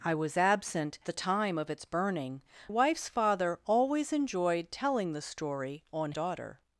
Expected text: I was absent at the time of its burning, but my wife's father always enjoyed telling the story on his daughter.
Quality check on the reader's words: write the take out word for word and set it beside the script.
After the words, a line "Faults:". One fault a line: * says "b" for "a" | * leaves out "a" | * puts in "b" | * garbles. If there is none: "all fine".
I was absent the time of its burning, wife's father always enjoyed telling the story on daughter.
Faults:
* leaves out "at"
* leaves out "but my"
* leaves out "his"